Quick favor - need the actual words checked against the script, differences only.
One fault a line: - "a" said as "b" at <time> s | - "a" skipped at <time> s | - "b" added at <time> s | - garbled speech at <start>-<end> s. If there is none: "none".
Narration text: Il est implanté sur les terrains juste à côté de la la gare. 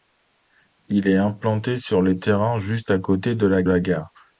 none